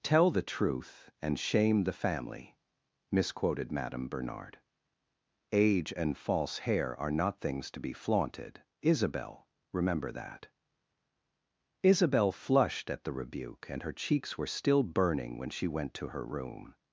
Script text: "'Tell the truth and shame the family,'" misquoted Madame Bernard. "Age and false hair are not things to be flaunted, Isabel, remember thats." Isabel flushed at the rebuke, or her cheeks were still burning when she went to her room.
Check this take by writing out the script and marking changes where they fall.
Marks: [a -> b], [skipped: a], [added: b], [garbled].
"'Tell the truth and shame the family,'" misquoted Madame Bernard. "Age and false hair are not things to be flaunted, Isabel, remember [thats." -> that] Isabel flushed at the rebuke, [or -> and] her cheeks were still burning when she went to her room.